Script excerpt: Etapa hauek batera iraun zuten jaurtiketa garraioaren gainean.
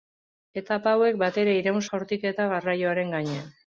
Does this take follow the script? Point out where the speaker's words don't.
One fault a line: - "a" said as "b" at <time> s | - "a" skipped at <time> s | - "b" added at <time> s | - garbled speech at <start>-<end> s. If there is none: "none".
- "zuten" skipped at 1.8 s